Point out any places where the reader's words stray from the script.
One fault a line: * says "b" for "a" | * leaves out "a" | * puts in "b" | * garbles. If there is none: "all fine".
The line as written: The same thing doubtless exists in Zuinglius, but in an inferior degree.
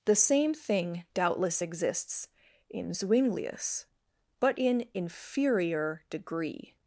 * leaves out "an"